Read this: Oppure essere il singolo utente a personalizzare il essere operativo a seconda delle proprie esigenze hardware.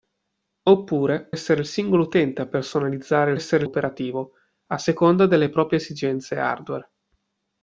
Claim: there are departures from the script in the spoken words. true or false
false